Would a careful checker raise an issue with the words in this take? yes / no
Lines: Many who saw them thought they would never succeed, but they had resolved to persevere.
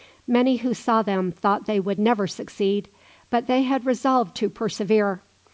no